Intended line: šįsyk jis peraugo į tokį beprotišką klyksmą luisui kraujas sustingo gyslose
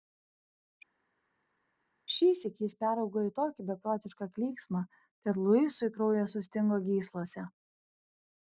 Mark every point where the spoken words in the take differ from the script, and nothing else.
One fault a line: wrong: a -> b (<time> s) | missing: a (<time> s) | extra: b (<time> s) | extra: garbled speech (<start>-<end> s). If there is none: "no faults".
extra: kad (5.3 s)